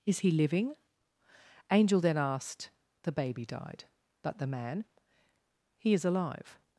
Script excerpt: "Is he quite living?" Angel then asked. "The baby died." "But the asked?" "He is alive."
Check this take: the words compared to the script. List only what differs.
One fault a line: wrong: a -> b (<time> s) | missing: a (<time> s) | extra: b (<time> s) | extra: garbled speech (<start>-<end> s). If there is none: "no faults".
missing: quite (0.3 s)
wrong: asked -> man (4.5 s)